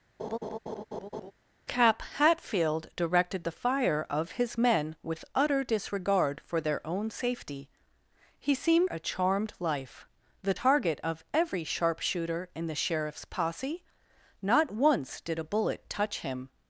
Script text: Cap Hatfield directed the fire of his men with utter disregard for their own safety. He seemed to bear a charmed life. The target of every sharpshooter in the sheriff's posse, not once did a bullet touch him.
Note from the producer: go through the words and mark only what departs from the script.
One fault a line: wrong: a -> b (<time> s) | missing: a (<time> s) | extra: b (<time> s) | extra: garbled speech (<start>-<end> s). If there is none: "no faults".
missing: to bear (8.9 s)